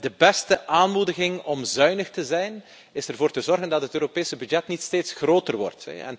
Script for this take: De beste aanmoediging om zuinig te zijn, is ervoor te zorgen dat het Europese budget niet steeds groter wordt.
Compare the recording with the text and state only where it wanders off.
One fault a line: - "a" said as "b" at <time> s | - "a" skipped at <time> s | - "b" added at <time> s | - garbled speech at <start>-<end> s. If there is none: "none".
none